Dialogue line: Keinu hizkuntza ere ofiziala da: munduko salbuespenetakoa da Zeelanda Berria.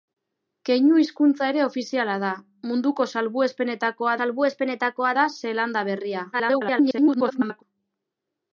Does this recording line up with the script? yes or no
no